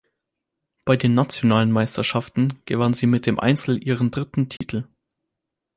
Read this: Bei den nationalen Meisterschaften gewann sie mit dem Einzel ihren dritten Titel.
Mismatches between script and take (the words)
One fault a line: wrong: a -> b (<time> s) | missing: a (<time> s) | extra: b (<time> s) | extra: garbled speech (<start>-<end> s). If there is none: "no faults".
no faults